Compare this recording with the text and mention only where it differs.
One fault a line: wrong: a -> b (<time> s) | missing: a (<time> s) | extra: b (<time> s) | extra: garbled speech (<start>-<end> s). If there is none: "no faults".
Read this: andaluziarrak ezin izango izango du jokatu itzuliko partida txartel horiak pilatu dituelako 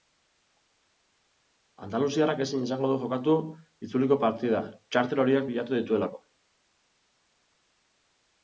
missing: izango (2.9 s)